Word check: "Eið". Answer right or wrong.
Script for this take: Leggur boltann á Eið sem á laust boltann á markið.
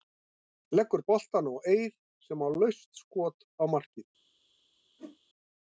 right